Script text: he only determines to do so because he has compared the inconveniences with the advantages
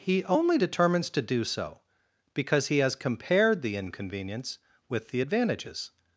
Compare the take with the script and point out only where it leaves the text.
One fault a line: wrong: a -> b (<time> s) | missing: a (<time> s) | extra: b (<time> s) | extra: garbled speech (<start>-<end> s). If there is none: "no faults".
wrong: inconveniences -> inconvenience (3.7 s)